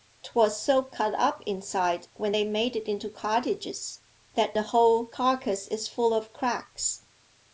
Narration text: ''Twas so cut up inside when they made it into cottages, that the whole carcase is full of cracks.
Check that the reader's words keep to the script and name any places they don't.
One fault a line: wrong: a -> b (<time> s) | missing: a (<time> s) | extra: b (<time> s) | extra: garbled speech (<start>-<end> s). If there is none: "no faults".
no faults